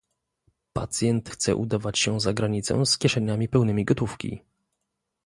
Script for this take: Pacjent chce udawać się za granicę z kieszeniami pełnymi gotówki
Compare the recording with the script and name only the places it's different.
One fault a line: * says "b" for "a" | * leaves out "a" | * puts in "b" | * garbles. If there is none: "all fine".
all fine